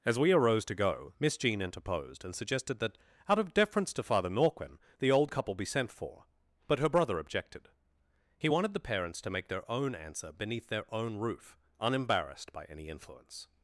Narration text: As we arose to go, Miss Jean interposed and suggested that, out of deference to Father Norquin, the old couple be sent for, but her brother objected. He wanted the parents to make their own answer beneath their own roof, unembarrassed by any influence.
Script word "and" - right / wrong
right